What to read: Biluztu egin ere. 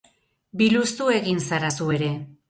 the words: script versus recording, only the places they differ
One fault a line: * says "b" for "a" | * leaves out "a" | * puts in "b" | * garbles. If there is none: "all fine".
* puts in "zara zu"